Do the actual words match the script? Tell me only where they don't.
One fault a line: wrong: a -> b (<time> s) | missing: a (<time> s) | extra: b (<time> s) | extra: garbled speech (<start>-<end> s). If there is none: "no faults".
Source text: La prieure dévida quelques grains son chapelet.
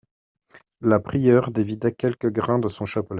extra: de (2.6 s)